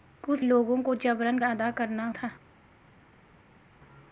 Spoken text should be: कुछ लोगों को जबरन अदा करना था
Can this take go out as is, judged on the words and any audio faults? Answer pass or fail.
pass